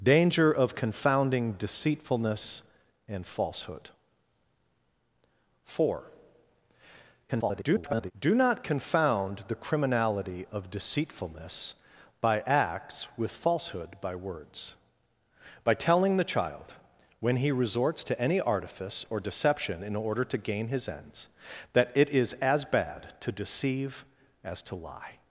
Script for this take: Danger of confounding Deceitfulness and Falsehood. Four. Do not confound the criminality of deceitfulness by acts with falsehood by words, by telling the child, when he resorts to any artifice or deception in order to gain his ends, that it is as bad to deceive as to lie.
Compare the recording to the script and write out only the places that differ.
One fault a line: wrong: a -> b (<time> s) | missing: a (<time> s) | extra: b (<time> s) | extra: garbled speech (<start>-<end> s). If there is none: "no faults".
extra: garbled speech (7.3-8.1 s)